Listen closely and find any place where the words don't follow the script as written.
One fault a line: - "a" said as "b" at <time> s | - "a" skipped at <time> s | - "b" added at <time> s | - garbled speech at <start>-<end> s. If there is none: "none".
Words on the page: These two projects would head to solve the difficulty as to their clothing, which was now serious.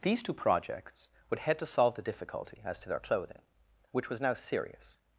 none